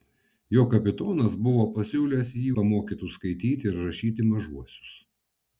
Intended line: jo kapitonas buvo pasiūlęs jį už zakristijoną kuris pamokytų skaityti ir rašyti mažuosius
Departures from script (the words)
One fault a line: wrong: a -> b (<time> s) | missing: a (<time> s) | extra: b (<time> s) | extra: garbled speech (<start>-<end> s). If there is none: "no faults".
missing: už zakristijoną kuris (2.5 s)